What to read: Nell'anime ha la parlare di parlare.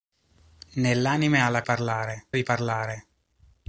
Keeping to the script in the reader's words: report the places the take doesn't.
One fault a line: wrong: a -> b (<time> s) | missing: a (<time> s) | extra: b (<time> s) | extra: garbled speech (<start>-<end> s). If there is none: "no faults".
no faults